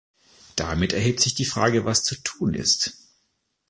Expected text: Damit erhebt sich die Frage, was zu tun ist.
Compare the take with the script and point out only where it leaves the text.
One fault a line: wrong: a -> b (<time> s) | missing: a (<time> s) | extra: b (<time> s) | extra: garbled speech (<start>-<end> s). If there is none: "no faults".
no faults